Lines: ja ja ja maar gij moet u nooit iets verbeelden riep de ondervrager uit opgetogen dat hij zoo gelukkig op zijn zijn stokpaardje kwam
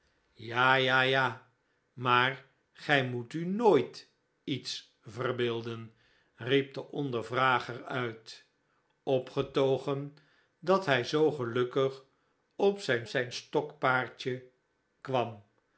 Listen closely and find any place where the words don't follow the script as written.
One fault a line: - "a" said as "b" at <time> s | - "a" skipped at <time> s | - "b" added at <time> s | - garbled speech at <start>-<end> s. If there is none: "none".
none